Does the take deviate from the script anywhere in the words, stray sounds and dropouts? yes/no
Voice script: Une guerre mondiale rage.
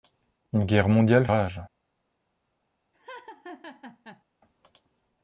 yes